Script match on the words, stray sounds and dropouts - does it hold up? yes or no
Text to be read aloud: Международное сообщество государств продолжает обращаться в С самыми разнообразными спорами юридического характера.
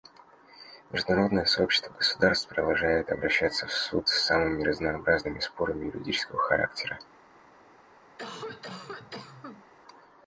no